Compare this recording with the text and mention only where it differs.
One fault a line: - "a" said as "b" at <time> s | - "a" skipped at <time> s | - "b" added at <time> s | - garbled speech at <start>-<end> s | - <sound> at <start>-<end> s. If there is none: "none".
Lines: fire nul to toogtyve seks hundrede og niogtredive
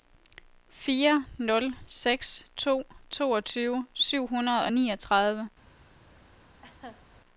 - "seks" added at 1.9 s
- "seks" said as "syv" at 3.9 s
- laugh at 6.6-7.0 s